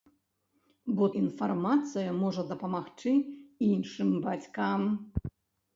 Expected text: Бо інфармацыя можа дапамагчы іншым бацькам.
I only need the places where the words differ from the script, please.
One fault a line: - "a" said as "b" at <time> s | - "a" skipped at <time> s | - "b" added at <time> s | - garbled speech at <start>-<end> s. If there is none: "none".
none